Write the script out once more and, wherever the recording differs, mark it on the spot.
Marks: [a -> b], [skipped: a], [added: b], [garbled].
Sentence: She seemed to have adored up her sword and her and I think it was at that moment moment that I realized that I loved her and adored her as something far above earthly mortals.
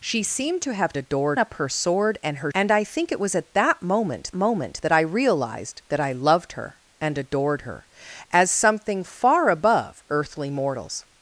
She seemed to have adored up her sword and her and I think it was at that moment moment that I realized that I loved her and adored her as something far above earthly mortals.